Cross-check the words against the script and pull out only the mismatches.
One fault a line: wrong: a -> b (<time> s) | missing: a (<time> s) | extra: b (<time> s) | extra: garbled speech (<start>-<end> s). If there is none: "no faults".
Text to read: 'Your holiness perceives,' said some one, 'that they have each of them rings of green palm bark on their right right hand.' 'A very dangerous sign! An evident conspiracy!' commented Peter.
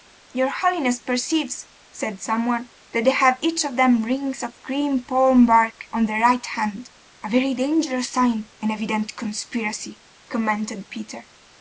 missing: right (6.5 s)